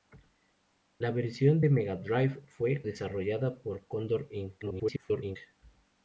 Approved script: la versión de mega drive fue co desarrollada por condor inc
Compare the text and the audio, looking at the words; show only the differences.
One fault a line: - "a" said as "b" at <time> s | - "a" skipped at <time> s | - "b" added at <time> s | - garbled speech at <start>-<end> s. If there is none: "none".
- "co" skipped at 2.8 s
- garbled speech at 4.6-5.4 s